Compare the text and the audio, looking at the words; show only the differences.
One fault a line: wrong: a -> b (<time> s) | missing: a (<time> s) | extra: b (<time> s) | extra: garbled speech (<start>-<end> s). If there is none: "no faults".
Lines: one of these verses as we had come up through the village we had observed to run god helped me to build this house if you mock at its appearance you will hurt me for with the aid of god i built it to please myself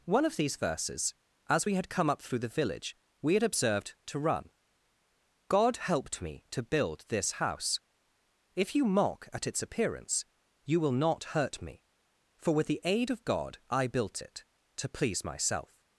extra: not (10.9 s)